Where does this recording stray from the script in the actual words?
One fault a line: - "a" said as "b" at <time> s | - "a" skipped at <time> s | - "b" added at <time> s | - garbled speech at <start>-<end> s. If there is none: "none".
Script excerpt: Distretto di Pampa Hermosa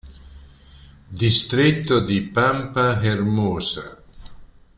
none